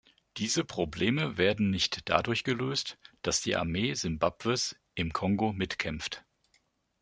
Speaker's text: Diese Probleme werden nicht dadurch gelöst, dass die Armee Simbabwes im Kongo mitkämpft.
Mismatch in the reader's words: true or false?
false